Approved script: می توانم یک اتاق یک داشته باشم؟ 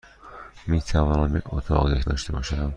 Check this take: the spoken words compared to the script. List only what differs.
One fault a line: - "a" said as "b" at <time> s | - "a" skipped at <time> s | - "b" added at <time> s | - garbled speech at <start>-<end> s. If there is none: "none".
none